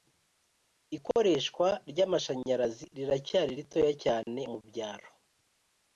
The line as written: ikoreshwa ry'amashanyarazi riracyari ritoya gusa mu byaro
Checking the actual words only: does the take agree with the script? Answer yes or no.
no